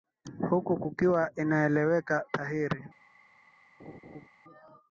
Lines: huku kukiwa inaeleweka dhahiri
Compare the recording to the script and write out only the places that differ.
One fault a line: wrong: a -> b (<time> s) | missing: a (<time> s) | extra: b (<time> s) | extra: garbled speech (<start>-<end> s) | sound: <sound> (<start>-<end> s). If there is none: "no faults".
sound: laugh (3.8-4.3 s)